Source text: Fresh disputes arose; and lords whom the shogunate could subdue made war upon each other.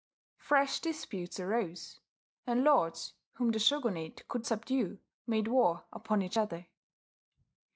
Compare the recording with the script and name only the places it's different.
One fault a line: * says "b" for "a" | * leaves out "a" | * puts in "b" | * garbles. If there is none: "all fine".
all fine